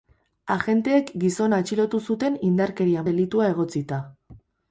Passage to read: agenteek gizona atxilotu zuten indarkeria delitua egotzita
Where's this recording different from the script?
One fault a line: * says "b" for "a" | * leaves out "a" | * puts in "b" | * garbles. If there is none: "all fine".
all fine